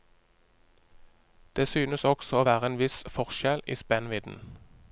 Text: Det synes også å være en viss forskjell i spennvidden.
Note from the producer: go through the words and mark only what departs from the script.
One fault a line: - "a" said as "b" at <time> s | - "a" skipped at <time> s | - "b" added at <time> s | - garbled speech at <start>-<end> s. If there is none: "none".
none